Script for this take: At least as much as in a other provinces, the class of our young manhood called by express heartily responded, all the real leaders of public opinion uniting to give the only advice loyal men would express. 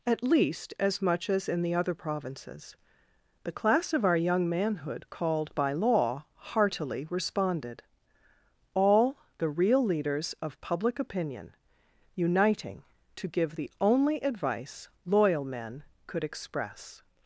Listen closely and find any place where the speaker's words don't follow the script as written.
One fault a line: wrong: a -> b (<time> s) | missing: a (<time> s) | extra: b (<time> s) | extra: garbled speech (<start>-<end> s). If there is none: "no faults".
wrong: a -> the (1.6 s)
wrong: express -> law (5.7 s)
wrong: would -> could (16.0 s)